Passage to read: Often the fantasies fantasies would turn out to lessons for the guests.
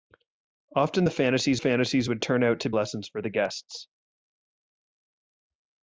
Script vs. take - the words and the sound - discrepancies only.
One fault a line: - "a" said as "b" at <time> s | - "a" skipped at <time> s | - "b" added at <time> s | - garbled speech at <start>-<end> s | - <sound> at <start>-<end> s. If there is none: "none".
none